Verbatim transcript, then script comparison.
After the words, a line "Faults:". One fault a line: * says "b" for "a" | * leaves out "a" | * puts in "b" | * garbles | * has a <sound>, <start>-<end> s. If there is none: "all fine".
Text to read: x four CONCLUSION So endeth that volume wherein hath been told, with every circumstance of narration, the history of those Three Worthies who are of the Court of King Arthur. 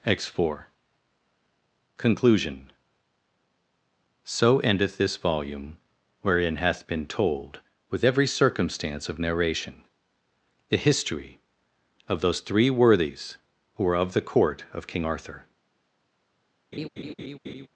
x four CONCLUSION So endeth this volume wherein hath been told, with every circumstance of narration, the history of those Three Worthies who were of the Court of King Arthur.
Faults:
* says "this" for "that"
* says "were" for "are"
* has a laugh, 16.7-17.7 s